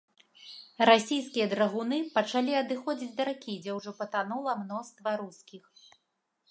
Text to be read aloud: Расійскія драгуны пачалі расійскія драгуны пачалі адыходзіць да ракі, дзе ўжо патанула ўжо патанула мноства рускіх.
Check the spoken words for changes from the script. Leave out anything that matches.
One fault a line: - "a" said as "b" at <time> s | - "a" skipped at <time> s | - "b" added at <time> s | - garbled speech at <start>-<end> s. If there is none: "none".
- "расійскія драгуны пачалі" skipped at 2.6 s
- "ўжо патанула" skipped at 4.5 s